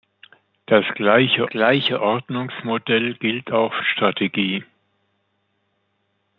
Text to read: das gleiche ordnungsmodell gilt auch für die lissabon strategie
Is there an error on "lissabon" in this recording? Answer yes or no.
yes